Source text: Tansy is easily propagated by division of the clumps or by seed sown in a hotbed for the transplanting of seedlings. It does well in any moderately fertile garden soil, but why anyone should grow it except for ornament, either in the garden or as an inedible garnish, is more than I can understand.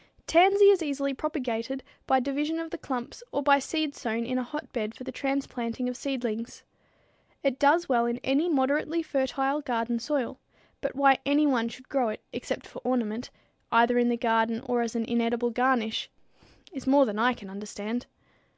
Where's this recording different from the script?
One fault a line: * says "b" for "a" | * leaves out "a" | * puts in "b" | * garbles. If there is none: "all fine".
all fine